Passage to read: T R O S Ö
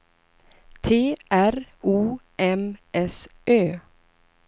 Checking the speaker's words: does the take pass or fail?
fail